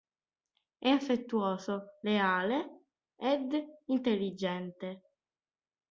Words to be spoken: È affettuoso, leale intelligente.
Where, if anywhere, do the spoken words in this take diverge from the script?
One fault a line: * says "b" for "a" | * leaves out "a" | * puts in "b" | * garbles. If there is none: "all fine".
* puts in "ed"